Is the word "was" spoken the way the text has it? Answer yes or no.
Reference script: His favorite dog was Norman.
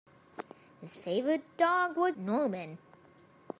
yes